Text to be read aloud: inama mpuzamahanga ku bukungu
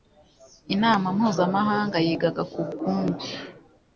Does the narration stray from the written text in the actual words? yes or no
yes